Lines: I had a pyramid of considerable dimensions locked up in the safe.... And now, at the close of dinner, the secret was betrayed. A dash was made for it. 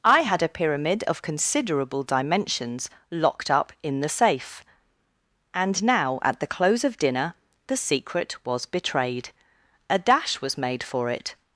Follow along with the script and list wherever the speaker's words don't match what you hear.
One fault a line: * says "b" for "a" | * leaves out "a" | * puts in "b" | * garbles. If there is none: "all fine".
all fine